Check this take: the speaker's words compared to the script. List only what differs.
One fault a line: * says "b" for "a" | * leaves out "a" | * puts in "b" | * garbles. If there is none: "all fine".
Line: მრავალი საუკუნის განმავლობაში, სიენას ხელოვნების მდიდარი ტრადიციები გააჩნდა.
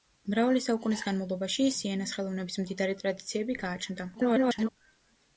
* garbles